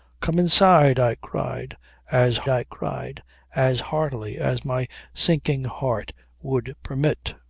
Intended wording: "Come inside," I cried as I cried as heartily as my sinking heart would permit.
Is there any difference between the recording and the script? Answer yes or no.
no